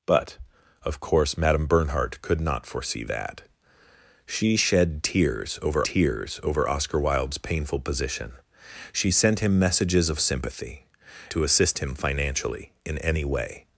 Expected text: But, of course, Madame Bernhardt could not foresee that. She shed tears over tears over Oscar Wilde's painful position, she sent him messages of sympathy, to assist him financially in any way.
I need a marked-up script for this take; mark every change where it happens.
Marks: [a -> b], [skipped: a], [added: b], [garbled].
But, of course, Madame Bernhardt could not foresee that. She shed tears over tears over Oscar Wilde's painful position, she sent him messages of sympathy, to assist him financially in any way.